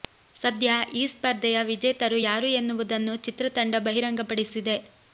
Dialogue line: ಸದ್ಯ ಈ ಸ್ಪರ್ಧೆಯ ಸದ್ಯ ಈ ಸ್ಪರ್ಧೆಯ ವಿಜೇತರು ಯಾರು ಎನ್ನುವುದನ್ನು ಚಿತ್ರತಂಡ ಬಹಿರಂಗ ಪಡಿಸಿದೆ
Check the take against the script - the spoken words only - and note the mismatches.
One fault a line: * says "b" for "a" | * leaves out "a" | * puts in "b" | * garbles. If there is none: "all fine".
* leaves out "ಸದ್ಯ ಈ ಸ್ಪರ್ಧೆಯ"